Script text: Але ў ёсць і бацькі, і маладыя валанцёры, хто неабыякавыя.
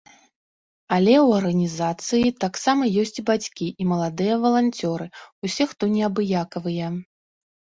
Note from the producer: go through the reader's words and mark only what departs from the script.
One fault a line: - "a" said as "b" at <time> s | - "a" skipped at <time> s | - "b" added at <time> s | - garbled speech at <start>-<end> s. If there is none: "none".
- "арганізацыі таксама" added at 1.4 s
- "усе" added at 5.5 s